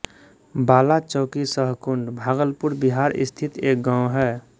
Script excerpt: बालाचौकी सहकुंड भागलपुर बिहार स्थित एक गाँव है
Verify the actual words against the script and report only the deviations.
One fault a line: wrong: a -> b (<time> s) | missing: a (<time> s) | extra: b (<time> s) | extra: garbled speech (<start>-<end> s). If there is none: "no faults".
no faults